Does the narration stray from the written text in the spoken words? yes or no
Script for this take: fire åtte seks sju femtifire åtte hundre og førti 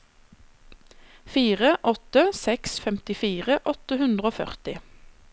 yes